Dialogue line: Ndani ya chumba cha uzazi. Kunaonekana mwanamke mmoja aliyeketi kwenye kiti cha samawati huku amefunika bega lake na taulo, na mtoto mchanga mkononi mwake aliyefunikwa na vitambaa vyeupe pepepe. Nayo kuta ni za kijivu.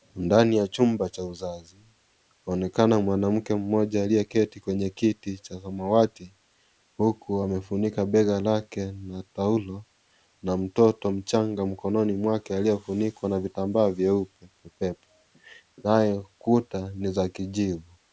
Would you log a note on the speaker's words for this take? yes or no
no